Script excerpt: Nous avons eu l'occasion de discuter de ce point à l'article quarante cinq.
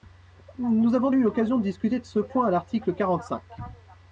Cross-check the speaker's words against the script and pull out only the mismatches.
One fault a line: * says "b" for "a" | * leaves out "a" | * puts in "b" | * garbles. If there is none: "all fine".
all fine